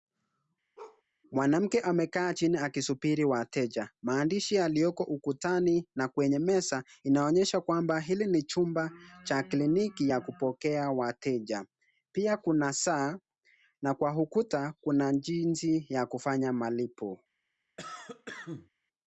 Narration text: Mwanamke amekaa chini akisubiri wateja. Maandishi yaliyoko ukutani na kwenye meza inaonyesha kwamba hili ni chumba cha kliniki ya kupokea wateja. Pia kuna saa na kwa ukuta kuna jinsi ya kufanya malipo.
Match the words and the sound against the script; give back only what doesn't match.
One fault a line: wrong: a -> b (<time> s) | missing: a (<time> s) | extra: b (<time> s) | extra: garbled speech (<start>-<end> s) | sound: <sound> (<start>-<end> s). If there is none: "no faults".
sound: bark (0.8-1.0 s)
sound: cough (17.8-18.7 s)